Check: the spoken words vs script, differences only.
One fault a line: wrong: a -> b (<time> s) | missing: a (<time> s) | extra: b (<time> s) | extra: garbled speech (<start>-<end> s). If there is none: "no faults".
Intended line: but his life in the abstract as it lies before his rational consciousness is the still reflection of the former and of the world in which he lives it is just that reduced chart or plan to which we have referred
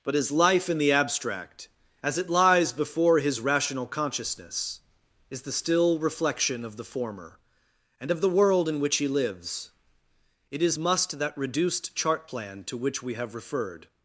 wrong: just -> must (10.8 s)
missing: or (12.3 s)